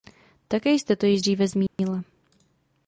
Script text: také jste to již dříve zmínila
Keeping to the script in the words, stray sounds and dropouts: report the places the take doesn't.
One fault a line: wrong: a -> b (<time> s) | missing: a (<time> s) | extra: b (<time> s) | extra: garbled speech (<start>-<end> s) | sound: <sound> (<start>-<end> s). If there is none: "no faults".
sound: dropout (1.7-1.8 s)